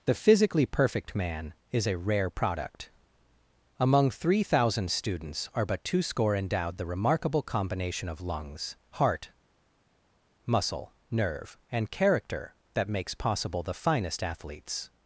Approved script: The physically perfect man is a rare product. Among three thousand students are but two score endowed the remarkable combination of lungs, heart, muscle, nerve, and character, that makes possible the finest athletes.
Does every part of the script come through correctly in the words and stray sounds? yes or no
yes